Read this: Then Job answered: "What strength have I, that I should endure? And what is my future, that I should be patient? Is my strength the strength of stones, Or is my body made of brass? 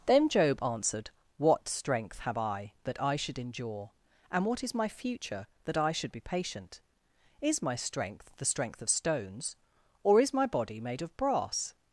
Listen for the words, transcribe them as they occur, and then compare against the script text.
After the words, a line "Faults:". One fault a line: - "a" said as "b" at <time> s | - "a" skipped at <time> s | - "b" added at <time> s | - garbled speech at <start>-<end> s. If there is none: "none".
Then Job answered: "What strength have I, that I should endure? And what is my future, that I should be patient? Is my strength the strength of stones, Or is my body made of brass?
Faults:
none